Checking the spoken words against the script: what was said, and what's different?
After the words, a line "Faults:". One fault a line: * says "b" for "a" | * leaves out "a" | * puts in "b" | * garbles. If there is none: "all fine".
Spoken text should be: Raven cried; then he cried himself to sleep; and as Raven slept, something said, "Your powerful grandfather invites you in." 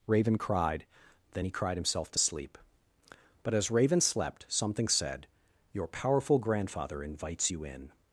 Raven cried; then he cried himself to sleep; but as Raven slept, something said, "Your powerful grandfather invites you in."
Faults:
* says "but" for "and"